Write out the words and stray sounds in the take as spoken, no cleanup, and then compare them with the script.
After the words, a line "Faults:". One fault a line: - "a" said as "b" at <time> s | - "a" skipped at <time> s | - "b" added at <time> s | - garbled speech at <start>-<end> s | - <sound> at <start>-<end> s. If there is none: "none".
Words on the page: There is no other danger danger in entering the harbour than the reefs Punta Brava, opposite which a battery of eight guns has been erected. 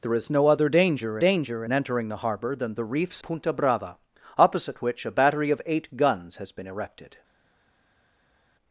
There is no other danger danger in entering the harbour than the reefs Punta Brava, opposite which a battery of eight guns has been erected.
Faults:
none